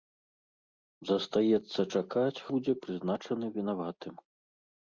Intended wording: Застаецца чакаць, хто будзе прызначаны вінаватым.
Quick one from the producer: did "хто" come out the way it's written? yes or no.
no